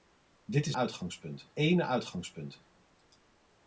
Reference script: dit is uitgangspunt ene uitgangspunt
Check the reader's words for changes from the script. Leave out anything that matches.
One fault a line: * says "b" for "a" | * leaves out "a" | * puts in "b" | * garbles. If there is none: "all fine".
all fine